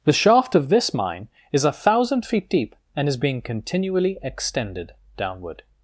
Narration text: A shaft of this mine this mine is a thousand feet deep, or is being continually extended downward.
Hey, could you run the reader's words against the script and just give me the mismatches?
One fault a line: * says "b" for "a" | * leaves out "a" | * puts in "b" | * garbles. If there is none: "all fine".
* says "The" for "A"
* leaves out "this mine"
* says "and" for "or"